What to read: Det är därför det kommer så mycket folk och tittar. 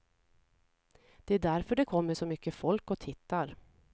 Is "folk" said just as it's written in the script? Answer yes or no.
yes